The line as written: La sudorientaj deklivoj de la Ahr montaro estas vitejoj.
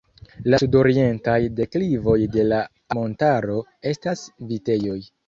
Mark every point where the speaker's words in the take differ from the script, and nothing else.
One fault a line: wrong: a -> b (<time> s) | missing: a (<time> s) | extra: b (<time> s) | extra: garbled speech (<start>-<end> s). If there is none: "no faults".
missing: Ahr (2.6 s)